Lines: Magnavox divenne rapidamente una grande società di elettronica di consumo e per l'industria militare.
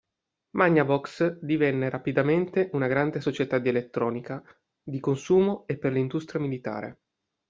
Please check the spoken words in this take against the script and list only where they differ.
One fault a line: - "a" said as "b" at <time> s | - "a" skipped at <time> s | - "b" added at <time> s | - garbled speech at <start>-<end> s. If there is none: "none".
none